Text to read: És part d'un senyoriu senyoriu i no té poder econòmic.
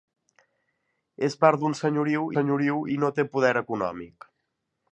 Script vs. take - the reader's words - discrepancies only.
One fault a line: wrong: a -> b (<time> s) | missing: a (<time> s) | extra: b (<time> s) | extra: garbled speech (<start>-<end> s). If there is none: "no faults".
no faults